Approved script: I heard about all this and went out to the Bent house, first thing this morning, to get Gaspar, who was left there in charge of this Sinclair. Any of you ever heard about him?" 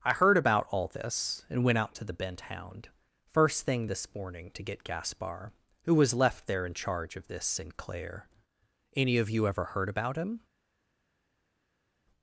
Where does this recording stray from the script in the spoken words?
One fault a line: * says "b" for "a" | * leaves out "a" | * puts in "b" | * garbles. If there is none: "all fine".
* says "hound" for "house"